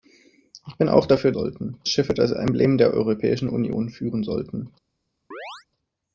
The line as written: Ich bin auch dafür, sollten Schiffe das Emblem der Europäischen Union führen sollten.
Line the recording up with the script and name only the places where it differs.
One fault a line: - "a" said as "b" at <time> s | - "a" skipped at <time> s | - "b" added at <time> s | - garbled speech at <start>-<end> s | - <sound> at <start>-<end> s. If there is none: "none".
- chirp at 5.3-5.7 s